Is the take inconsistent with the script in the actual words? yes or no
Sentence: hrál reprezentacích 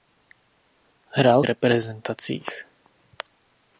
no